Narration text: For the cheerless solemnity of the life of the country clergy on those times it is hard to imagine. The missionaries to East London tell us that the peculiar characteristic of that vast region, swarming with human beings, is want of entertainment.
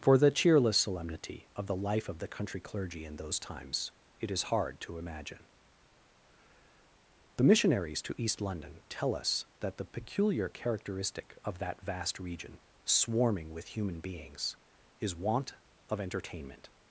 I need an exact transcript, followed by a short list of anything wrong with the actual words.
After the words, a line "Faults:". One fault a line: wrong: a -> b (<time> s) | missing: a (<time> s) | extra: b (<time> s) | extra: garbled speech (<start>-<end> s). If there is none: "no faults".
For the cheerless solemnity of the life of the country clergy in those times it is hard to imagine. The missionaries to East London tell us that the peculiar characteristic of that vast region, swarming with human beings, is want of entertainment.
Faults:
wrong: on -> in (3.0 s)